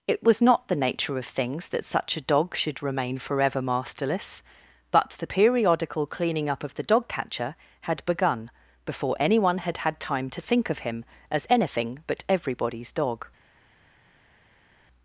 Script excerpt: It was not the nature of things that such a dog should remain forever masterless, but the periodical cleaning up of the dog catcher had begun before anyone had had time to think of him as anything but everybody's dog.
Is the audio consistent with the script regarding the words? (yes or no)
yes